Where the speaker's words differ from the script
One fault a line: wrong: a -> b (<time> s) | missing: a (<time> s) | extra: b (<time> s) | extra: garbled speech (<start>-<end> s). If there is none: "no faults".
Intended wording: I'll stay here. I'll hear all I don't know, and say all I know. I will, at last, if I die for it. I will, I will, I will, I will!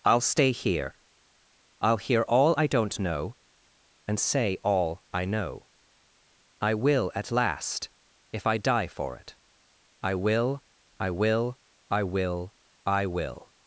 no faults